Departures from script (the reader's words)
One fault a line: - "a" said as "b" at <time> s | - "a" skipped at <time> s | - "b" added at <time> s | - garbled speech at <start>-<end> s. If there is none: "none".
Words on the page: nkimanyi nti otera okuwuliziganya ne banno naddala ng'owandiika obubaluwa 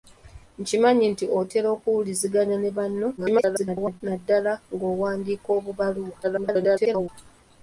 - garbled speech at 3.2-4.0 s
- garbled speech at 6.2-7.1 s